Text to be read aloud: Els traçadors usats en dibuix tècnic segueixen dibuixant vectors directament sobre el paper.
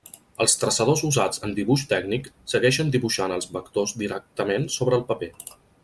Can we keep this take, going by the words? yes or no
no